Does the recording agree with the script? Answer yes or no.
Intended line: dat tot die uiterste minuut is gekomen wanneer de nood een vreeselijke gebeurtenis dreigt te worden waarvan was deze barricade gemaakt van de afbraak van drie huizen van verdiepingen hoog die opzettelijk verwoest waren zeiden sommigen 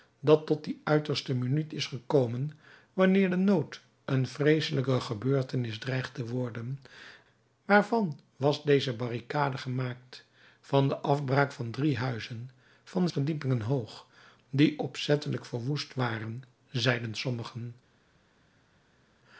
yes